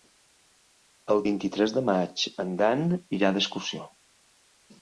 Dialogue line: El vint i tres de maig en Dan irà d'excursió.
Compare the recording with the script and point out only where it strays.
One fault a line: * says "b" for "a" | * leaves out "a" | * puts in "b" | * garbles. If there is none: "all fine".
all fine